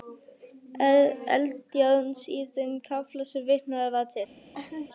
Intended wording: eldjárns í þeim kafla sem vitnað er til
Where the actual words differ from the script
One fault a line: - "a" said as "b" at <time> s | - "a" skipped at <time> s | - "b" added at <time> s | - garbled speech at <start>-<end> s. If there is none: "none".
- "er" said as "var" at 4.0 s